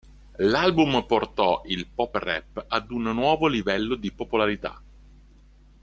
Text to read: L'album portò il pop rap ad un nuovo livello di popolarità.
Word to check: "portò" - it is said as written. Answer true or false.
true